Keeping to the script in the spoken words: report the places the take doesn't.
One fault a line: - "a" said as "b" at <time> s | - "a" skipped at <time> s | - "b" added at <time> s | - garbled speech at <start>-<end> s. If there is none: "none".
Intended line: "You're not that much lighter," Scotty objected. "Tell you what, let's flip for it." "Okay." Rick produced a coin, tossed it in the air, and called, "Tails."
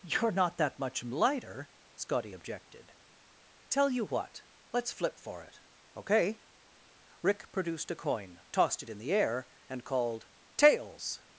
none